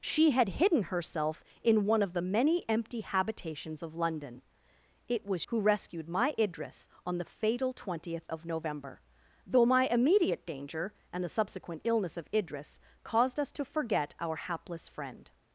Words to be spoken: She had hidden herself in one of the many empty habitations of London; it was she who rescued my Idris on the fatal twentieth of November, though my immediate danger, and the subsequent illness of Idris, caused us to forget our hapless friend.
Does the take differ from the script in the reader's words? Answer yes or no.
yes